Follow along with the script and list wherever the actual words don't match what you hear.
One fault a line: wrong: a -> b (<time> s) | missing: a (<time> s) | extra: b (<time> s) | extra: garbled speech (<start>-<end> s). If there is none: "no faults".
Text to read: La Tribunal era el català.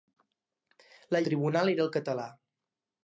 no faults